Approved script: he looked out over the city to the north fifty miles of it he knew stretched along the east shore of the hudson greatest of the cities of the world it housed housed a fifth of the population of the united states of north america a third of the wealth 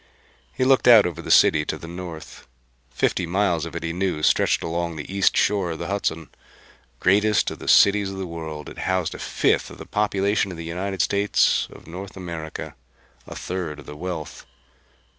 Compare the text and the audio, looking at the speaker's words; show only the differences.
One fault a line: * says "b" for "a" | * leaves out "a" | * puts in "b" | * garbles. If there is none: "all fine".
* leaves out "housed"